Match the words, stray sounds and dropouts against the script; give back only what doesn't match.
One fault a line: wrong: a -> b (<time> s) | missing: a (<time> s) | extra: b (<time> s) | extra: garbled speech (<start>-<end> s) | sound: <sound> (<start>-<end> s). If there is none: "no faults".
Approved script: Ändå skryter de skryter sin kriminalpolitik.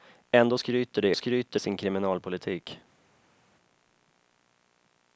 no faults